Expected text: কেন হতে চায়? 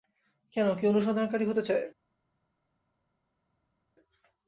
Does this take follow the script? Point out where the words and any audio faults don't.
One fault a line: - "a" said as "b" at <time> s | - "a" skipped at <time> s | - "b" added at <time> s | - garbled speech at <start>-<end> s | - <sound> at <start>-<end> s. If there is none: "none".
- "কেউ অনুসন্ধানকারী" added at 0.8 s